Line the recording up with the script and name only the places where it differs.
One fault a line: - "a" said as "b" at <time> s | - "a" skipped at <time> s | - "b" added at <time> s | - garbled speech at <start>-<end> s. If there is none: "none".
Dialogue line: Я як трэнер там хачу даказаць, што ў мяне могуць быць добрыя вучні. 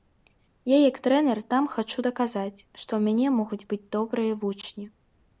none